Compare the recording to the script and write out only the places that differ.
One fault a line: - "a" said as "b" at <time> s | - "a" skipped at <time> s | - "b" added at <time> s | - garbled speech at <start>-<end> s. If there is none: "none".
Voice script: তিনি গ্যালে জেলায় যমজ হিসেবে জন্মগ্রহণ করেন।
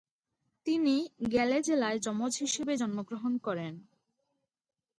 none